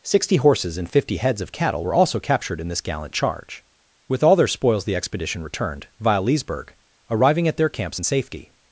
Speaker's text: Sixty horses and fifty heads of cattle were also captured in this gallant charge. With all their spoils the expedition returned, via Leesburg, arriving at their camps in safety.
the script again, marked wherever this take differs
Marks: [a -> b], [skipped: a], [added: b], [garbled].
Sixty horses and fifty heads of cattle were also captured in this gallant charge. With all their spoils the expedition returned, via Leesburg, arriving at their camps in safety.